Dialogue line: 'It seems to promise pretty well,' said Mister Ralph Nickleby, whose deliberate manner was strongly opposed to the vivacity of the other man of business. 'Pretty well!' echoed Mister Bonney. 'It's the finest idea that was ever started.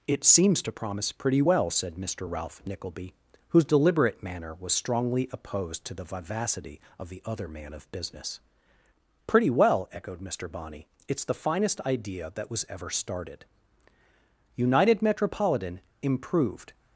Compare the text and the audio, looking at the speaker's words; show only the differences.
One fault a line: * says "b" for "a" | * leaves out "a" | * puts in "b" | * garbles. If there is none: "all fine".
* puts in "United Metropolitan Improved"